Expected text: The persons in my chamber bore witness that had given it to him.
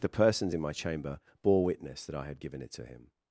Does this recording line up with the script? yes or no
no